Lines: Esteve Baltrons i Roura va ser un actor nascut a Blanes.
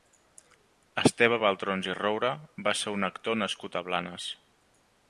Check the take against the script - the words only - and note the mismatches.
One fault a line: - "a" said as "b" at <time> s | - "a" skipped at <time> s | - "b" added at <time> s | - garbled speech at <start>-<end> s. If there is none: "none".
none